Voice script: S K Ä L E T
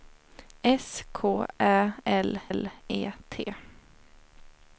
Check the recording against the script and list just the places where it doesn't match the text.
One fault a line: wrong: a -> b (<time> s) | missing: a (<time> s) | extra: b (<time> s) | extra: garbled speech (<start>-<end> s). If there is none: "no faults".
extra: L (2.5 s)